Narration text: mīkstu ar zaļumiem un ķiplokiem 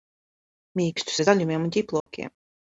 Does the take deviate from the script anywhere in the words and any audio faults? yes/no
yes